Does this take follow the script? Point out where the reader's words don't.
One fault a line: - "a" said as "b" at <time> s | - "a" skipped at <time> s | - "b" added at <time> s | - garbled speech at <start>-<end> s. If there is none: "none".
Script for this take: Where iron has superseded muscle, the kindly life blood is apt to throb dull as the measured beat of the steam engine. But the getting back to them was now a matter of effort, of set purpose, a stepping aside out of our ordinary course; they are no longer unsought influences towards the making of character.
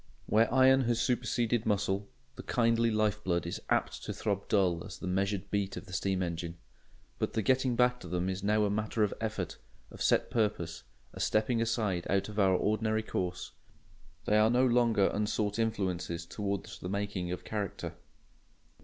- "was" said as "is" at 8.3 s